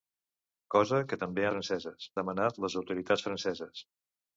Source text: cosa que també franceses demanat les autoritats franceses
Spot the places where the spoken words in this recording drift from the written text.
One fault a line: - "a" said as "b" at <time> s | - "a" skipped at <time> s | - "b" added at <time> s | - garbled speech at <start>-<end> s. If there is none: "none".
none